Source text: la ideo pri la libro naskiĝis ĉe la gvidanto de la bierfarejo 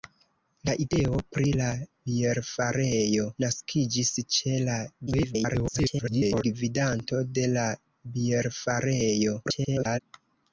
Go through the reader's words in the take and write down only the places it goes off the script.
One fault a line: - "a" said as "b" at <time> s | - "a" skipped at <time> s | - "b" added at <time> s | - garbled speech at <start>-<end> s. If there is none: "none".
- "libro" said as "bierfarejo" at 2.1 s
- garbled speech at 5.1-6.4 s
- garbled speech at 9.4-10.0 s